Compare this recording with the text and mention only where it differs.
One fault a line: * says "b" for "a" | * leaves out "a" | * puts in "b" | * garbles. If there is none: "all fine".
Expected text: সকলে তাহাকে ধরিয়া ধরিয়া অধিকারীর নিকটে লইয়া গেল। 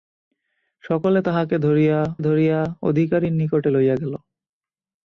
all fine